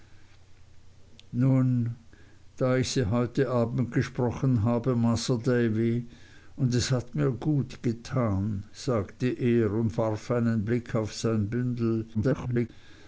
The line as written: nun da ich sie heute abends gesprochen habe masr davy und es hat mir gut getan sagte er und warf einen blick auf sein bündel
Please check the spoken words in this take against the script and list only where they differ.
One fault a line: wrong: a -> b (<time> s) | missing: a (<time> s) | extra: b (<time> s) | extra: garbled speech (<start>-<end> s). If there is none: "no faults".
extra: garbled speech (12.1-12.7 s)